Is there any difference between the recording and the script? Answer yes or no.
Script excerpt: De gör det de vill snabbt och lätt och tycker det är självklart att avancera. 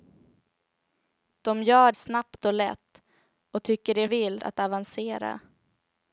yes